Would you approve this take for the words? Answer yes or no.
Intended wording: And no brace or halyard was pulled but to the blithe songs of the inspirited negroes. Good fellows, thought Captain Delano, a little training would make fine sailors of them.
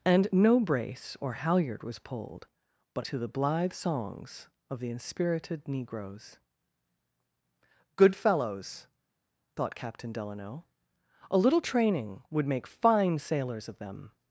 yes